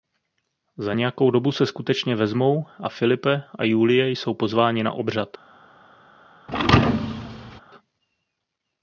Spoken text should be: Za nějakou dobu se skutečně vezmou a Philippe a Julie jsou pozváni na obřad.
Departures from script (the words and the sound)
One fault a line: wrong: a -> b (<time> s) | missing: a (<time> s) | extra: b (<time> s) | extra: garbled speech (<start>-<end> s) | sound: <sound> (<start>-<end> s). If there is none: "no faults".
sound: thud (6.5-7.6 s)